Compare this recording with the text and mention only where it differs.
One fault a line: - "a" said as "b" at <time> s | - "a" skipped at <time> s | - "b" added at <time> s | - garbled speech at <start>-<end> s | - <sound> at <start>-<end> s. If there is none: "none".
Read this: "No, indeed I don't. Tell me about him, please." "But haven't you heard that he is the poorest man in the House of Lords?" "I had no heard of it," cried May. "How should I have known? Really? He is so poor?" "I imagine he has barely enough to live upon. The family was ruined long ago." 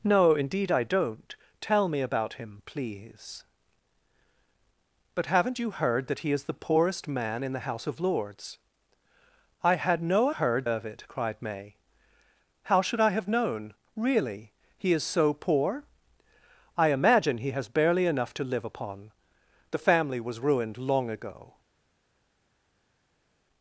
none